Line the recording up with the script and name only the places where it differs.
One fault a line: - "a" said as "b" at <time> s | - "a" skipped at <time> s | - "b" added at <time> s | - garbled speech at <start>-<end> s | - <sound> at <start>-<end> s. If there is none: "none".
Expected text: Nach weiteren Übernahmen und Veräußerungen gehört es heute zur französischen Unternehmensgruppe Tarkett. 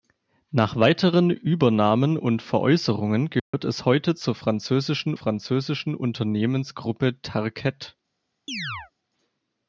- dropout at 3.4-3.5 s
- "französischen" added at 5.1 s
- chirp at 8.5-8.9 s